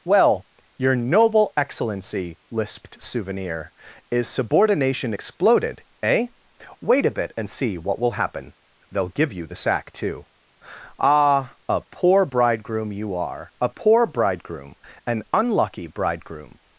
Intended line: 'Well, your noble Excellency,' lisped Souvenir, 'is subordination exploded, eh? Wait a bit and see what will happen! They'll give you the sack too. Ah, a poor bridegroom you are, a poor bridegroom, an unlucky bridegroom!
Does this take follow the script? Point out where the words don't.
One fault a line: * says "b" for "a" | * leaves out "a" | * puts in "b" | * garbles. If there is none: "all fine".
all fine